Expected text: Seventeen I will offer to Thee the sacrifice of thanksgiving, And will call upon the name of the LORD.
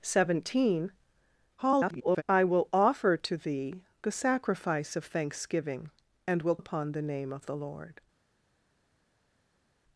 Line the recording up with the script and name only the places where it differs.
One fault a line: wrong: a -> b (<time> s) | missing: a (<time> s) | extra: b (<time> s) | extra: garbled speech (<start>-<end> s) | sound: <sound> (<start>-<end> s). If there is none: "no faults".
extra: garbled speech (1.6-2.2 s)
missing: call (6.6 s)